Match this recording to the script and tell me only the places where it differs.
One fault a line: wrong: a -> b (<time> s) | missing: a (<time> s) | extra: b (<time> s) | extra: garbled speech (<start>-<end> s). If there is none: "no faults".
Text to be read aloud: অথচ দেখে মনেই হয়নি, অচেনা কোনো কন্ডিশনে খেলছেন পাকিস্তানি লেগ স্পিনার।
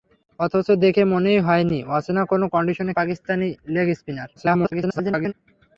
missing: খেলছেন (2.9 s)
extra: garbled speech (4.4-5.3 s)